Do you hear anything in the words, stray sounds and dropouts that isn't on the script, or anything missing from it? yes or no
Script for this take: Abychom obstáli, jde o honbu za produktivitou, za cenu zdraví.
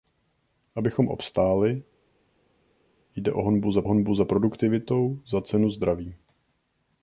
yes